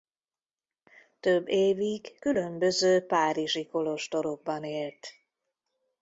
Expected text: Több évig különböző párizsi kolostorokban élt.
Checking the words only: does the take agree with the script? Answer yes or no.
yes